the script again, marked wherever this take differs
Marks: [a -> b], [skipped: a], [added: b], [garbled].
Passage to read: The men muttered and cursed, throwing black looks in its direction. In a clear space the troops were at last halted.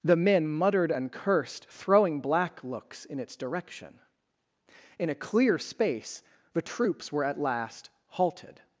The men muttered and cursed, throwing black looks in its direction. In a clear space the troops were at last halted.